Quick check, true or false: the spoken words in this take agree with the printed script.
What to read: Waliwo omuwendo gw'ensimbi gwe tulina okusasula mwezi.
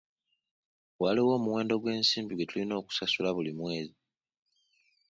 false